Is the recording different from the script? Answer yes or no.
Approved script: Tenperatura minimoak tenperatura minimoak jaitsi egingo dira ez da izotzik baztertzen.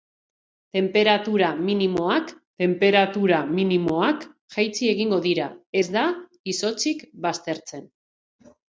no